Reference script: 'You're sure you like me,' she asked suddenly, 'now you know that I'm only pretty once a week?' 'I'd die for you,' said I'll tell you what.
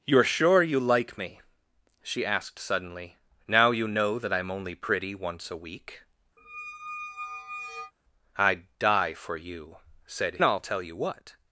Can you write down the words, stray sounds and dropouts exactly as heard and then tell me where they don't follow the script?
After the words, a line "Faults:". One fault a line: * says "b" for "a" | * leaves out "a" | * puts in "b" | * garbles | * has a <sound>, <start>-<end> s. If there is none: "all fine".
'You're sure you like me,' she asked suddenly, 'now you know that I'm only pretty once a week?' 'I'd die for you,' said I'll tell you what.
Faults:
* has a squeak, 6.4-7.9 s